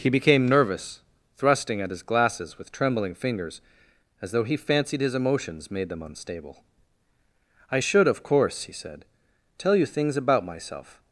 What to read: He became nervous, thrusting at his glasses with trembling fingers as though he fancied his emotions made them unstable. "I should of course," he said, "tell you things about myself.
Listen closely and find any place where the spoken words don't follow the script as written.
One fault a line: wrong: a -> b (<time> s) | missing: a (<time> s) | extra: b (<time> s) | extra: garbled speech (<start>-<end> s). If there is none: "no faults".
no faults